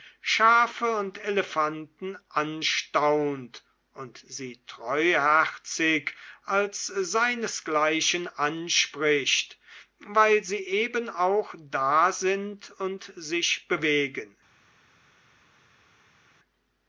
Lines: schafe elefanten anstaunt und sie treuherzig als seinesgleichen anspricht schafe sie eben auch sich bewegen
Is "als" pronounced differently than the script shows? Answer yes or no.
no